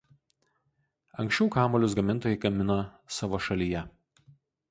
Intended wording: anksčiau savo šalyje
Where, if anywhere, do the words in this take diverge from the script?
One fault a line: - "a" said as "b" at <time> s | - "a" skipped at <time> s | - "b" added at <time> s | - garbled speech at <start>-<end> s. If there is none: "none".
- "kamuolius gamintojai gamino" added at 1.6 s